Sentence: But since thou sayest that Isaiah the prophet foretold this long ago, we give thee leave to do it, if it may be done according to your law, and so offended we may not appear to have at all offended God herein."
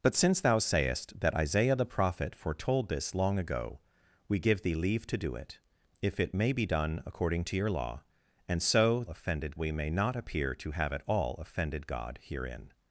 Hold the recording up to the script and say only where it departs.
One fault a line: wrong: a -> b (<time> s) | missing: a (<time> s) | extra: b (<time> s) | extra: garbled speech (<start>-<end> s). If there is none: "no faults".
no faults